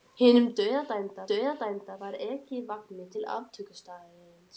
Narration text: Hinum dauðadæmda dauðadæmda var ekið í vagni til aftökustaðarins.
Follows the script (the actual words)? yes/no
yes